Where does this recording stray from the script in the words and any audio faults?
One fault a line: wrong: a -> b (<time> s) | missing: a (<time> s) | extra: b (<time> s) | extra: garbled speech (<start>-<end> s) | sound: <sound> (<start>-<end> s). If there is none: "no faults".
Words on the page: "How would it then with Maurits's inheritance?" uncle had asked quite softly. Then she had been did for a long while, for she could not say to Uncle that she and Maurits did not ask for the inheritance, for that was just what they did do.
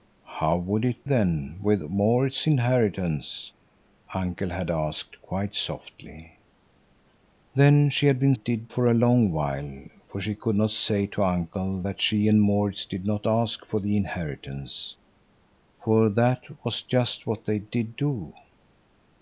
no faults